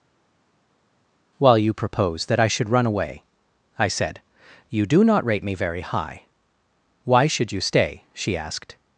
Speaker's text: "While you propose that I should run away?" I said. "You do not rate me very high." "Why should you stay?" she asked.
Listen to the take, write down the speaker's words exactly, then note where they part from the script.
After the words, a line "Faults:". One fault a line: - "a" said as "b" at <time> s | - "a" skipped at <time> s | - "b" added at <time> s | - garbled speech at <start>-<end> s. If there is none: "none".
"While you propose that I should run away?" I said. "You do not rate me very high." "Why should you stay?" she asked.
Faults:
none